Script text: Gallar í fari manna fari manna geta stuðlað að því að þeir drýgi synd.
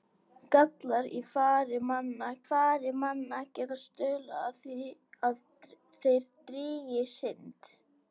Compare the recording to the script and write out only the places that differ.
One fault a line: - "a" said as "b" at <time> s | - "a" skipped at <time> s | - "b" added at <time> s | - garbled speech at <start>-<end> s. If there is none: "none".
none